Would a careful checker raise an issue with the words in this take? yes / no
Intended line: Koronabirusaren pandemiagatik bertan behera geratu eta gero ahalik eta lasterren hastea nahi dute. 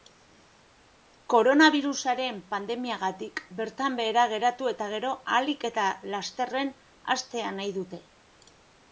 no